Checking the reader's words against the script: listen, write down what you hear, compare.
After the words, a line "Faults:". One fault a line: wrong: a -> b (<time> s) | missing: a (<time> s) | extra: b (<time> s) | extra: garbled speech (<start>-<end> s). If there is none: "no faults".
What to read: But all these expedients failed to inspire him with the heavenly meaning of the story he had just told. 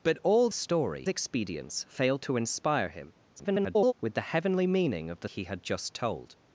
But all story expedients failed to inspire him [garbled] with the heavenly meaning of the he had just told.
Faults:
wrong: these -> story (0.5 s)
extra: garbled speech (3.4-3.9 s)
missing: story (5.3 s)